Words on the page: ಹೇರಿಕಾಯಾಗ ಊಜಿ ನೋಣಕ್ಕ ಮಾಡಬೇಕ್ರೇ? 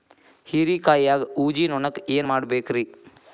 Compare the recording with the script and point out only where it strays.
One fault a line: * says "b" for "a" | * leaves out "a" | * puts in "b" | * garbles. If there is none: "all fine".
* puts in "ಏನ್"